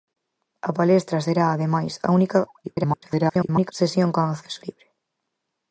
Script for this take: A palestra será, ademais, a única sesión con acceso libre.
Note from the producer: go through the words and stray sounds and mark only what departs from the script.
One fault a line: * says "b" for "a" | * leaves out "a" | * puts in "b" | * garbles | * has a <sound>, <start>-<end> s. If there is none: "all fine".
* garbles